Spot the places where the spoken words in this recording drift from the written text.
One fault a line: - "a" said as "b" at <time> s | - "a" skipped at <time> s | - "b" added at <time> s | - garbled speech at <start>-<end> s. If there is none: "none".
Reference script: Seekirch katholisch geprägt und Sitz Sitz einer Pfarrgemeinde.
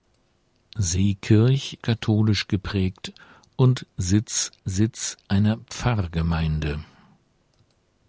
none